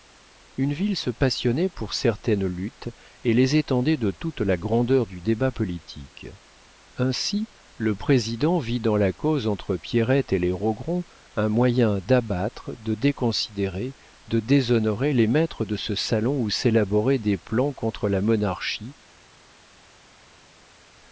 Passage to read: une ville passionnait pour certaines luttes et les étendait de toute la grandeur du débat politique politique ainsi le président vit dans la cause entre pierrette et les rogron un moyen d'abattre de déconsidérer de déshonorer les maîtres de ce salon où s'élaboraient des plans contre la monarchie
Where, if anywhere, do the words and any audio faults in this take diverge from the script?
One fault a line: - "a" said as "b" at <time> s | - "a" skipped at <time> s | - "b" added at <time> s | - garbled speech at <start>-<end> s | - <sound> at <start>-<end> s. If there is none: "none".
- "se" added at 1.0 s
- "politique" skipped at 6.2 s